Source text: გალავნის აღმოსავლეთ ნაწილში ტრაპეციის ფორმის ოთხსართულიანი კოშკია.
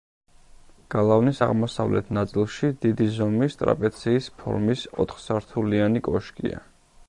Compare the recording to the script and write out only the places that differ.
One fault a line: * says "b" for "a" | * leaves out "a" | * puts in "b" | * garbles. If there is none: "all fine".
* puts in "დიდი ზომის"